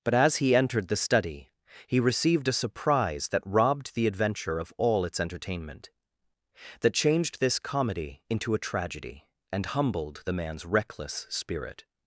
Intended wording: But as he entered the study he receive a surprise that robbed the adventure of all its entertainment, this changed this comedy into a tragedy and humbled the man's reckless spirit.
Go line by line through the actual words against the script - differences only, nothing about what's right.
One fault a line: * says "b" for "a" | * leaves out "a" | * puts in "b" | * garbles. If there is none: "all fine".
* says "received" for "receive"
* says "that" for "this"